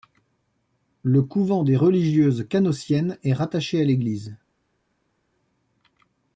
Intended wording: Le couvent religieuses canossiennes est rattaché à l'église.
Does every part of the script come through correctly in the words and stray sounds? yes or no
no